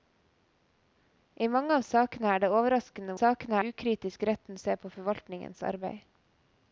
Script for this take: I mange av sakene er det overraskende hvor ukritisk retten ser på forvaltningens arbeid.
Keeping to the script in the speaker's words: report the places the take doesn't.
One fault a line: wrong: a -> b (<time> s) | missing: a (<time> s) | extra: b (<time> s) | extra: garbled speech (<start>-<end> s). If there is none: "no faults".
wrong: hvor -> sakene (3.2 s)